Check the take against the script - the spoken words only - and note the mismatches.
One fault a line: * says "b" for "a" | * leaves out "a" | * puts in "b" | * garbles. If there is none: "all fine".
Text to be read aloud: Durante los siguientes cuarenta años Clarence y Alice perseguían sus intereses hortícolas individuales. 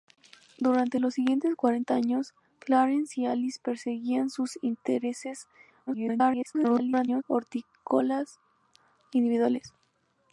* garbles